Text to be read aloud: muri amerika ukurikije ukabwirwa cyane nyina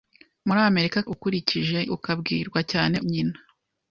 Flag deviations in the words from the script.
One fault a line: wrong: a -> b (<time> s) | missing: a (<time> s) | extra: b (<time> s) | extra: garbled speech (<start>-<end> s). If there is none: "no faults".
no faults